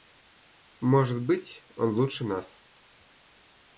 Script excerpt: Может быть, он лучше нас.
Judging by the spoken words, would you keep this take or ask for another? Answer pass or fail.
pass